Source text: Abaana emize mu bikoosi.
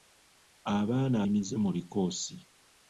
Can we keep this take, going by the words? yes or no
yes